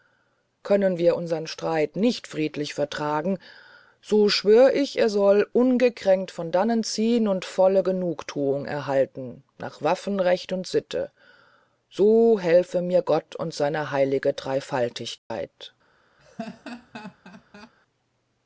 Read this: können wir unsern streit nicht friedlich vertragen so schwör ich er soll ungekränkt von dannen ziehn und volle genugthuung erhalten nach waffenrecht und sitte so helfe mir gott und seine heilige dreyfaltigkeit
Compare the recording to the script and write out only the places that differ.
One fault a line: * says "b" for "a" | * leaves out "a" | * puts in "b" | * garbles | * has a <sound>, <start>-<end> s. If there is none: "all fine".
* has a dropout, 15.2-15.3 s
* has a laugh, 16.2-17.7 s